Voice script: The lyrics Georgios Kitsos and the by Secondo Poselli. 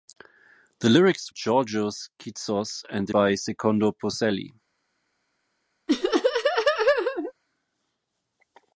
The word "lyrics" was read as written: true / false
true